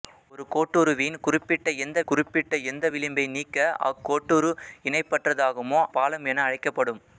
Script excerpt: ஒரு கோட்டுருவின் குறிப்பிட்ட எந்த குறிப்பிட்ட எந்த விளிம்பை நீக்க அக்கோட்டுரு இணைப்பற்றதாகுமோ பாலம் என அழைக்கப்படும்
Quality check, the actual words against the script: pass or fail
pass